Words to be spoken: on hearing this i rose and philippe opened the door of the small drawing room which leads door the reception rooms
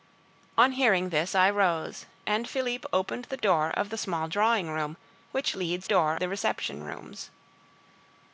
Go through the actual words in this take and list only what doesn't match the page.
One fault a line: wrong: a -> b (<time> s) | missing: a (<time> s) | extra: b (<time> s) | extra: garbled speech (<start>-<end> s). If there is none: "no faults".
no faults